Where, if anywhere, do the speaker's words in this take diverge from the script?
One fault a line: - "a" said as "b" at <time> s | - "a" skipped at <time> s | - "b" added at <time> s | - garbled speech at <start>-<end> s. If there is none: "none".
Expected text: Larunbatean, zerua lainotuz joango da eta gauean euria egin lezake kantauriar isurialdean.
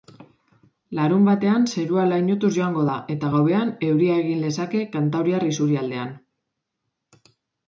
none